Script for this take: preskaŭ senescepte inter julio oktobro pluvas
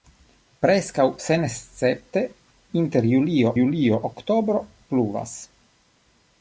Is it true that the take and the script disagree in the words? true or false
true